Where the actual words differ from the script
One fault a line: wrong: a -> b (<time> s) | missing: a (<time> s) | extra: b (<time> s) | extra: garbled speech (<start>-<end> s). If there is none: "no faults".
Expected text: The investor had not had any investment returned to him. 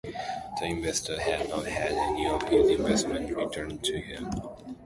extra: of his (2.3 s)